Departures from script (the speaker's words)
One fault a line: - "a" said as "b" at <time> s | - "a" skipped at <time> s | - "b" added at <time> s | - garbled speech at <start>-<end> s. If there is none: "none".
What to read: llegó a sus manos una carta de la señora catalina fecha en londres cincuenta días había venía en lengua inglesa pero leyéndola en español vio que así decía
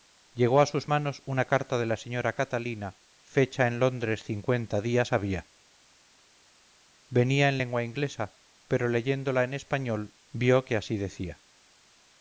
none